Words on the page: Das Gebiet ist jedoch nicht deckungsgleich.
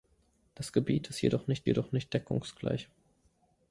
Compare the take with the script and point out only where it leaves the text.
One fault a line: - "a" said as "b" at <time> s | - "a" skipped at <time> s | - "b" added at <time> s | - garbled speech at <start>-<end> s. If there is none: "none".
- "jedoch nicht" added at 1.6 s